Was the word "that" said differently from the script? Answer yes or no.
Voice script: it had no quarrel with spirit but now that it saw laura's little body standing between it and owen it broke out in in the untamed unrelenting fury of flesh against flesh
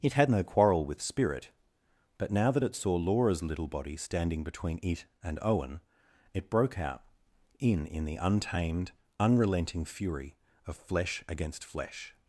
no